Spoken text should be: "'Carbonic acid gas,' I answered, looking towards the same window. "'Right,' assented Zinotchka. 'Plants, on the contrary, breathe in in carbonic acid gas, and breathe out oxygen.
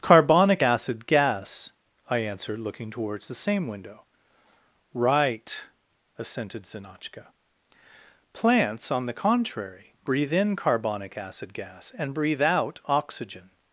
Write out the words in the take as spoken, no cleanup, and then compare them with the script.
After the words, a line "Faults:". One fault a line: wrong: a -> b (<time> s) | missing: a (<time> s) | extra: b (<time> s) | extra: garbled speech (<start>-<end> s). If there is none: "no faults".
"'Carbonic acid gas,' I answered, looking towards the same window. "'Right,' assented Zinotchka. 'Plants, on the contrary, breathe in carbonic acid gas, and breathe out oxygen.
Faults:
missing: in (10.5 s)